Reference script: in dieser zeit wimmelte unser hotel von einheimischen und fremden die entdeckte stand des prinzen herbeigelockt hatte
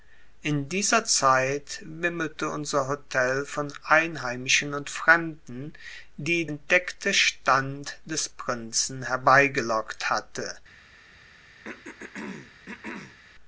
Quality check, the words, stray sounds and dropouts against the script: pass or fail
fail